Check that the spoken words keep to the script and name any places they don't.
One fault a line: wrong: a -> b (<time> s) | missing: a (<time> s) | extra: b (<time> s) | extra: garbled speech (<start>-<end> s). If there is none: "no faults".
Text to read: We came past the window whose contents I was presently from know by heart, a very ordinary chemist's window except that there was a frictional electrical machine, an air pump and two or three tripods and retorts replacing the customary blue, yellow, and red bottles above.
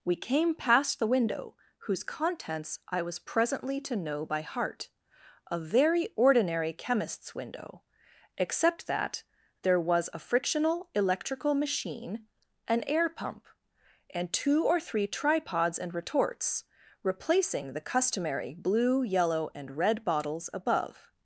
wrong: from -> to (3.8 s)